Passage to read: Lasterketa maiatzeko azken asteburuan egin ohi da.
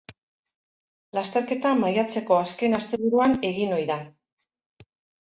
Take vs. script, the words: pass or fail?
pass